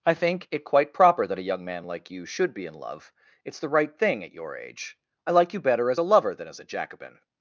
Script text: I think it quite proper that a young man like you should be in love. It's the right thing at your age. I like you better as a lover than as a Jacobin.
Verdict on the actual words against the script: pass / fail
pass